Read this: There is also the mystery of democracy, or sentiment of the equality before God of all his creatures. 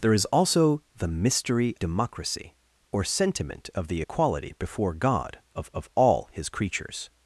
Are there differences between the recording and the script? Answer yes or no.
yes